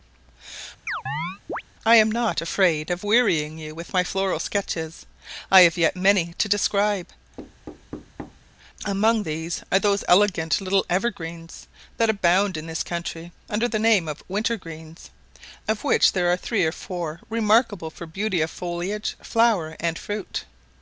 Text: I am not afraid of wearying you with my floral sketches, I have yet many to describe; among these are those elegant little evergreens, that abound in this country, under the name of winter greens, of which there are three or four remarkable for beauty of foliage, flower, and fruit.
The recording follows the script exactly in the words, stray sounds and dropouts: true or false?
false